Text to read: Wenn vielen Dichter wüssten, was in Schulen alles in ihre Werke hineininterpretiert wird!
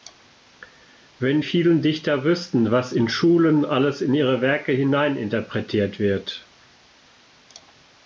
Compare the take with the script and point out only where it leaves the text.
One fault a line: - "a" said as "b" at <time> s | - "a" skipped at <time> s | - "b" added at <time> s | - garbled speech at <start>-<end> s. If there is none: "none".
none